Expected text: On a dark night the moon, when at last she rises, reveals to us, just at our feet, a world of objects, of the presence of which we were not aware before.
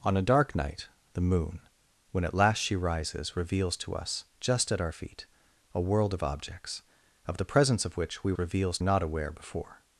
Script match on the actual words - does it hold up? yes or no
no